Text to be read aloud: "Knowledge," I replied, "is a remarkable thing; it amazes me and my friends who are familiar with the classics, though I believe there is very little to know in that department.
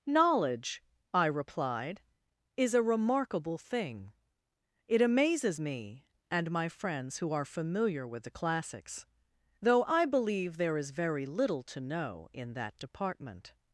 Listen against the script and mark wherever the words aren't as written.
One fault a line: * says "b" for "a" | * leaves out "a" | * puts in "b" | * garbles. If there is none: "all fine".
all fine